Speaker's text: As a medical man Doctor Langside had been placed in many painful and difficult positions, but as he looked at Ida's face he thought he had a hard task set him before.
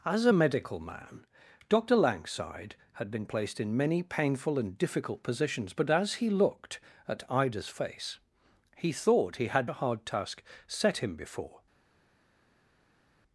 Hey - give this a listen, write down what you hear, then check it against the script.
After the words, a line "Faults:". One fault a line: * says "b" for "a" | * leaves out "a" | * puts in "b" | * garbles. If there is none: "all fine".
As a medical man Doctor Langside had been placed in many painful and difficult positions, but as he looked at Ida's face he thought he had a hard task set him before.
Faults:
all fine